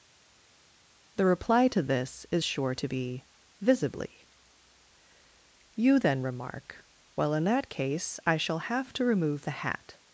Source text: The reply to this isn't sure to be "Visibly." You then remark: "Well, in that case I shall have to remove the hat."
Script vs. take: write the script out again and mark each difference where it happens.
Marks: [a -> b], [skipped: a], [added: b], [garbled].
The reply to this [isn't -> is] sure to be "Visibly." You then remark: "Well, in that case I shall have to remove the hat."